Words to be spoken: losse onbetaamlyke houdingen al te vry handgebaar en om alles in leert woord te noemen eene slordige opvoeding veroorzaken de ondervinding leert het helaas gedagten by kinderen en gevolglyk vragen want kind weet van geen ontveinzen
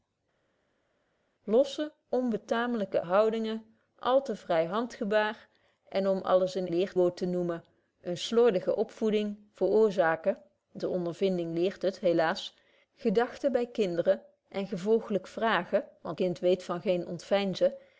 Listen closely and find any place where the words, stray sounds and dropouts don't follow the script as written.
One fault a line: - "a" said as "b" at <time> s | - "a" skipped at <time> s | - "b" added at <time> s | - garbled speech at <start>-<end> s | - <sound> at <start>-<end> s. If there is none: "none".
none